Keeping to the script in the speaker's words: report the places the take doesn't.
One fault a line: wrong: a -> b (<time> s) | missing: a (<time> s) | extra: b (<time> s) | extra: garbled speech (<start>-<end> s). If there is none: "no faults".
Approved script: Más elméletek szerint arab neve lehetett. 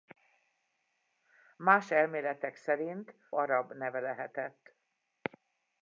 no faults